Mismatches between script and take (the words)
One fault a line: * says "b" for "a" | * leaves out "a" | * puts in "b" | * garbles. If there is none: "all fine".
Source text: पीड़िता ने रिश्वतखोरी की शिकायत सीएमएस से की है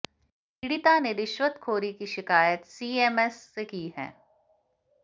all fine